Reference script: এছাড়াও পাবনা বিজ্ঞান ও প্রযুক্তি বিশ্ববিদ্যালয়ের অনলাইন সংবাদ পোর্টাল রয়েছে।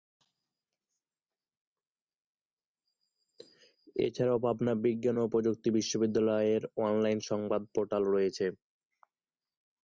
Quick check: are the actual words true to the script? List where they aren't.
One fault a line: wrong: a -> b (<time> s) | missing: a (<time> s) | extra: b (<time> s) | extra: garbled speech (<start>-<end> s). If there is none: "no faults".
no faults